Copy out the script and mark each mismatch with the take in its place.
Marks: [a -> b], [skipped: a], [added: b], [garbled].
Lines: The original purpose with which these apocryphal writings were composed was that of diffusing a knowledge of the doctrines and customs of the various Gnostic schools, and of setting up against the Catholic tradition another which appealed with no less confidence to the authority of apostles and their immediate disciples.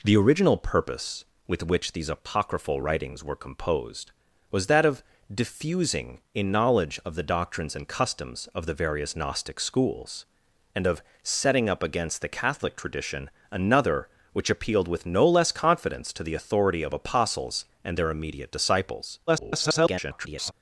The original purpose with which these apocryphal writings were composed was that of diffusing a knowledge of the doctrines and customs of the various Gnostic schools, and of setting up against the Catholic tradition another which appealed with no less confidence to the authority of apostles and their immediate disciples. [garbled]